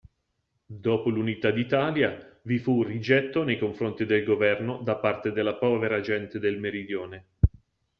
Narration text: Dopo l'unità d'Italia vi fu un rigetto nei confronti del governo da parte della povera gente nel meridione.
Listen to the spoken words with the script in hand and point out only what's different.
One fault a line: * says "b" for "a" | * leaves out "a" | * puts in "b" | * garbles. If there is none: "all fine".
* says "del" for "nel"